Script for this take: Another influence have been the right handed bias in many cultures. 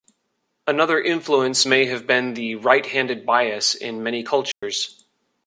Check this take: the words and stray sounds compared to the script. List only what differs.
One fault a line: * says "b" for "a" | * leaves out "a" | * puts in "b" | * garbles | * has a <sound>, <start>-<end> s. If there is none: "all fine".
* puts in "may"
* has a dropout, 4.5-4.6 s